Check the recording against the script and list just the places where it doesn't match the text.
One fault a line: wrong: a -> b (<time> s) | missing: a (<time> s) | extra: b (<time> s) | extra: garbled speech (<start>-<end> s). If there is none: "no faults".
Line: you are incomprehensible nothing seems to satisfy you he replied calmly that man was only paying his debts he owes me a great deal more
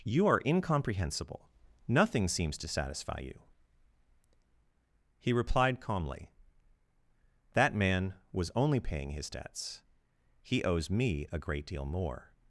no faults